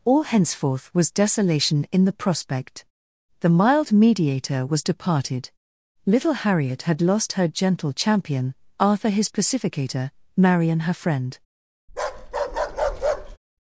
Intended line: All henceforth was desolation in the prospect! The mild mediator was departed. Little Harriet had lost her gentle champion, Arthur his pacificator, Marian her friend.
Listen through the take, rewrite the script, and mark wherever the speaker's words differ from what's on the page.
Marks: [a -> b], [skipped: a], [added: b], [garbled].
All henceforth was desolation in the prospect! The mild mediator was departed. Little Harriet had lost her gentle champion, Arthur his pacificator, Marian her friend.